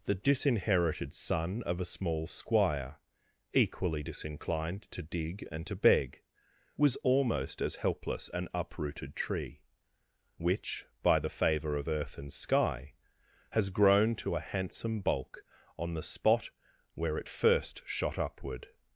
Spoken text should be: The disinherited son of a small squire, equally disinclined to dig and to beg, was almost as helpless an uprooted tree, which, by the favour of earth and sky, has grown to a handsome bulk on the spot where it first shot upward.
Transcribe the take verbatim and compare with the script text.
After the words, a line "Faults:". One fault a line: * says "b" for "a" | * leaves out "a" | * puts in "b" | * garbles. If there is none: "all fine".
The disinherited son of a small squire, equally disinclined to dig and to beg, was almost as helpless an uprooted tree, which, by the favour of earth and sky, has grown to a handsome bulk on the spot where it first shot upward.
Faults:
all fine